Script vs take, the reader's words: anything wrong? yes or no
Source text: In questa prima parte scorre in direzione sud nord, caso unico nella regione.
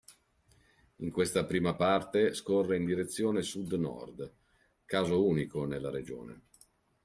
no